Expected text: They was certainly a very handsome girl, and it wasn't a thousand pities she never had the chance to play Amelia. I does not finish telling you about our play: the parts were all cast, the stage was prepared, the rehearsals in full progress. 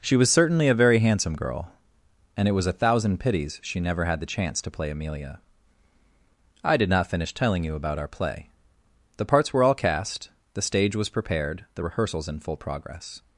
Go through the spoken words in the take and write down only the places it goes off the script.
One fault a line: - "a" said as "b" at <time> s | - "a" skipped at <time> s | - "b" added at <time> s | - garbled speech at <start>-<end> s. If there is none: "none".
- "They" said as "She" at 0.0 s
- "wasn't" said as "was" at 2.5 s
- "does" said as "did" at 6.8 s